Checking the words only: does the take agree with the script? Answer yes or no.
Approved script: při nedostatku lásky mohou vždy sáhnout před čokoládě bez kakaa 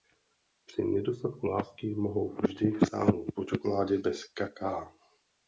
no